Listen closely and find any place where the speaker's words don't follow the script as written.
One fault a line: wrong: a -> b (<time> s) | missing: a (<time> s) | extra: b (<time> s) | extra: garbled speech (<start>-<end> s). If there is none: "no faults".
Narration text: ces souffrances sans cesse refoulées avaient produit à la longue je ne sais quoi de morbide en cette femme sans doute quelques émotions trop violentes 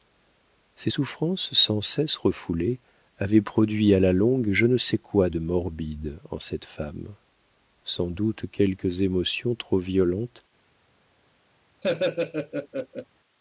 no faults